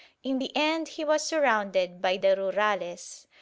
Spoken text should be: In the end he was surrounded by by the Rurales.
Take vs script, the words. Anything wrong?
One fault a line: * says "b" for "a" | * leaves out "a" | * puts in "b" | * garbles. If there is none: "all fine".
* leaves out "by"